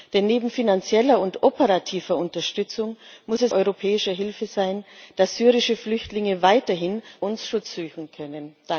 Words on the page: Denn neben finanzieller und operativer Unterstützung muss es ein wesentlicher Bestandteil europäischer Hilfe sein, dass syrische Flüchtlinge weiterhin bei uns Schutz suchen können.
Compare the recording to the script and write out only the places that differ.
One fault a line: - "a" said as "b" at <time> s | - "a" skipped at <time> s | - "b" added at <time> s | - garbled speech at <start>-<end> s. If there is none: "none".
- "ein wesentlicher Bestandteil" skipped at 3.5 s
- "bei" skipped at 7.0 s